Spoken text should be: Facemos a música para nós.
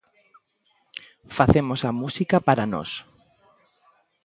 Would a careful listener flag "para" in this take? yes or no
no